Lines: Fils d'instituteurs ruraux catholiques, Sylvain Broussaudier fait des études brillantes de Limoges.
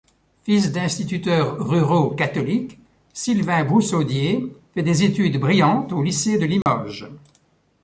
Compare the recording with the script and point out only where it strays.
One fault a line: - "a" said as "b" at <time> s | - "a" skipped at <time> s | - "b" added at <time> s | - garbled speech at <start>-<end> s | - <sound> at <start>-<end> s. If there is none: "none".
- "au lycée" added at 5.9 s
- dropout at 6.6-6.7 s